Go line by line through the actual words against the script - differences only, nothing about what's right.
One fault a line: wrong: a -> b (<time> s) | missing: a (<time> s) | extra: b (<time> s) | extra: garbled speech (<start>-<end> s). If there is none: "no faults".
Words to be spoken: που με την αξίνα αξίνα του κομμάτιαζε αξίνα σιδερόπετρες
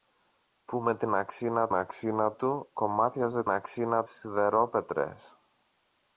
no faults